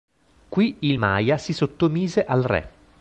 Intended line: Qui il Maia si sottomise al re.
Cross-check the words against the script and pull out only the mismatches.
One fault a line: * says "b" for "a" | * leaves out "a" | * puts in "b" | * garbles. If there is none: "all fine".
all fine